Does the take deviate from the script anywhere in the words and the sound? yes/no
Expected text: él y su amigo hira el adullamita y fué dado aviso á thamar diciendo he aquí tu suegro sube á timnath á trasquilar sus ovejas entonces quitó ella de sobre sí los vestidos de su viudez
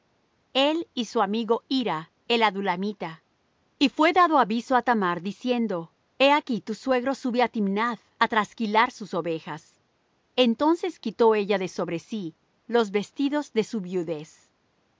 no